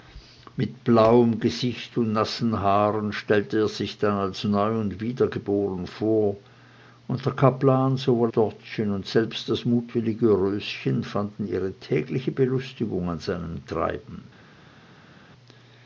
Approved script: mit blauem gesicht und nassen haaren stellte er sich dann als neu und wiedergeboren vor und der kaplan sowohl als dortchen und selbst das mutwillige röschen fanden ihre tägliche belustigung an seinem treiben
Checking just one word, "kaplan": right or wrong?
right